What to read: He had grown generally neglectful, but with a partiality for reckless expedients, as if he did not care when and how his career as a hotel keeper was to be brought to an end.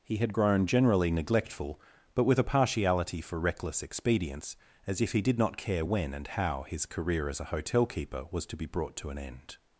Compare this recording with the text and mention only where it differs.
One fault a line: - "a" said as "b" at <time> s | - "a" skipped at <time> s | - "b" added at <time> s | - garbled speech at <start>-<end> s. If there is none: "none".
none